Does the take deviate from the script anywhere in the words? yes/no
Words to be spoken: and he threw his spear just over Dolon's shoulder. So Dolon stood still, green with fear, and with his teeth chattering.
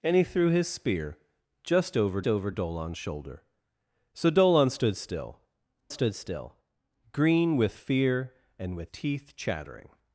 yes